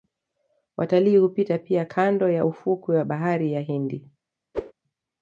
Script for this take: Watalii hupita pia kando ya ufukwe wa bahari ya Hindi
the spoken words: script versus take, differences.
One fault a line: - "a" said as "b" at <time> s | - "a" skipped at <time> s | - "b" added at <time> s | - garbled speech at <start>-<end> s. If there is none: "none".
none